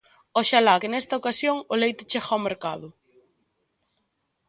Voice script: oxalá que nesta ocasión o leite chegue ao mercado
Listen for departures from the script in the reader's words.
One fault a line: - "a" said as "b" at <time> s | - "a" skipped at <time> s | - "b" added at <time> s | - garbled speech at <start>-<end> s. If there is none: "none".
none